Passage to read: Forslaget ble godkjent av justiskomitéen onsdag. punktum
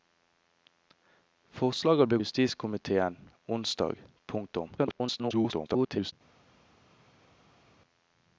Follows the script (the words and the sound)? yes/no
no